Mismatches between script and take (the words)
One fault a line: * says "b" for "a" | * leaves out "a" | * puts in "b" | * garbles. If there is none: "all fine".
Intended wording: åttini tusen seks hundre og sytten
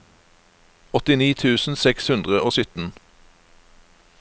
all fine